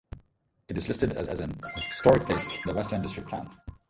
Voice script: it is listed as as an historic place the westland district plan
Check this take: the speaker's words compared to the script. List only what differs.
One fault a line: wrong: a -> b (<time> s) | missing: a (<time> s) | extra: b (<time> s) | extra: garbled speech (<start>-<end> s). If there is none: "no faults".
no faults